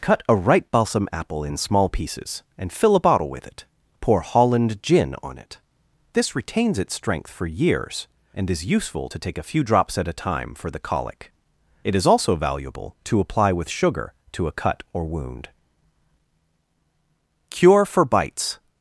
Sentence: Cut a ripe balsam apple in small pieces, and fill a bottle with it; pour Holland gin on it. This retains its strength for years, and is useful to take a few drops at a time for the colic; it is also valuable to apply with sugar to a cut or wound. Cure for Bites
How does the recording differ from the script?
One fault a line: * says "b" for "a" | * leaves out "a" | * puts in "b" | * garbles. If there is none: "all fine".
all fine